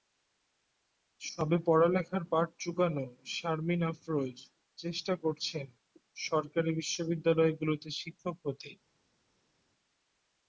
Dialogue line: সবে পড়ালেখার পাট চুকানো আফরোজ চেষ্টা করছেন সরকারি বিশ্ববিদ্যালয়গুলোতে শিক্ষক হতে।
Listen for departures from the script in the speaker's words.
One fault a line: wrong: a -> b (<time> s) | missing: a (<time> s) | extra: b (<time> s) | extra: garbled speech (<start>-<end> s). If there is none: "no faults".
extra: শারমিন (3.3 s)